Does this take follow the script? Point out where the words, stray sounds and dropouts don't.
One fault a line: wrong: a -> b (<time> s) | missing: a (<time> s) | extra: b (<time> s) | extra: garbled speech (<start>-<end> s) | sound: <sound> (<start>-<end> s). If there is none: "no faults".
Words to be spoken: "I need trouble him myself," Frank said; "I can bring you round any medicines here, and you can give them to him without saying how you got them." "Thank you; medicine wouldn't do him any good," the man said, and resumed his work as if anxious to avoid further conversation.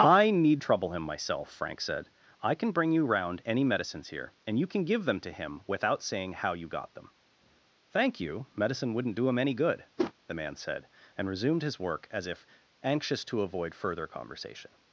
sound: whoosh (10.0-10.1 s)